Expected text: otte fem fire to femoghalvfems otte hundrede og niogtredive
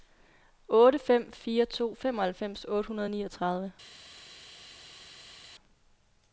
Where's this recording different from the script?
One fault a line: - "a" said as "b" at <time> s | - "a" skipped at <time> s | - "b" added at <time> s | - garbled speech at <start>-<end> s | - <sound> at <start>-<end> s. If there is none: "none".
none